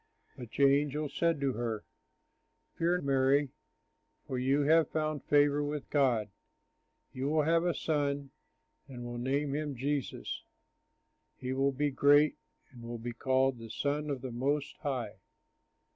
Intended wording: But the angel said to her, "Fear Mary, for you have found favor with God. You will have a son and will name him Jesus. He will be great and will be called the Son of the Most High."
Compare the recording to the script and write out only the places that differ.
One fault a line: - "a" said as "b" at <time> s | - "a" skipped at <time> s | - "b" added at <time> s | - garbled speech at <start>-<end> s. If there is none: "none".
none